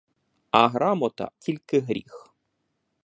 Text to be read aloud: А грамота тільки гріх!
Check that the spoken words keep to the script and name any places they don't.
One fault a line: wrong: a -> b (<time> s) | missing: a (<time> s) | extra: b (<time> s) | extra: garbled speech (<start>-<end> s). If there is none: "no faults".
no faults